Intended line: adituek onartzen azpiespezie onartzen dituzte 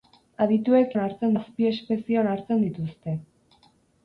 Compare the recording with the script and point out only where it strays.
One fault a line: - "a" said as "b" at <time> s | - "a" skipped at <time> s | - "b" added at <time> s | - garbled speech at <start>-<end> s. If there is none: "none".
none